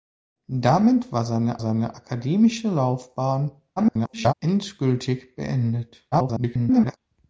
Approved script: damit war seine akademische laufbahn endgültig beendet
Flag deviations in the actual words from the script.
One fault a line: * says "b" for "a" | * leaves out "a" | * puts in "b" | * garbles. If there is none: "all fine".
* puts in "seine"
* garbles
* garbles